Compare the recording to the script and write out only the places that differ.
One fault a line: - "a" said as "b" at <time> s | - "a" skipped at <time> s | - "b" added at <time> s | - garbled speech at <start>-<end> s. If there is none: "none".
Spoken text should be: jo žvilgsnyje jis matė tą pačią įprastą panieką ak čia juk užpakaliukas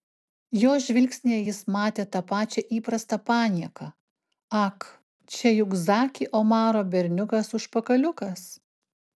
- "zaki omaro berniukas" added at 5.9 s